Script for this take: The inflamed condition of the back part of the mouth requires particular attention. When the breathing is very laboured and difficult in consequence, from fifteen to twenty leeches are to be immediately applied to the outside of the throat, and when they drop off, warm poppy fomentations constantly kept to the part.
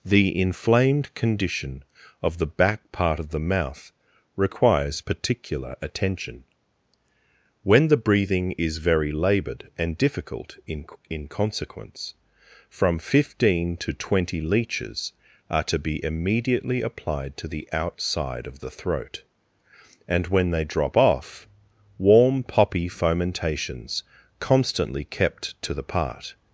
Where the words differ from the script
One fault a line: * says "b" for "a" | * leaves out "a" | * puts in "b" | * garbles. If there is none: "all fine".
* puts in "in"